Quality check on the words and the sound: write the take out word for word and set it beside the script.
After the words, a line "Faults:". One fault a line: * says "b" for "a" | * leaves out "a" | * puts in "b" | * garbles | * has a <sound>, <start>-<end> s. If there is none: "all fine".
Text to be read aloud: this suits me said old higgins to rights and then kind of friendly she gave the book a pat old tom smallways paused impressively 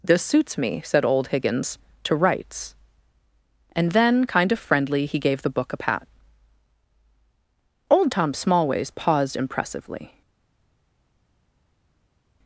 this suits me said old higgins to rights and then kind of friendly he gave the book a pat old tom smallways paused impressively
Faults:
* says "he" for "she"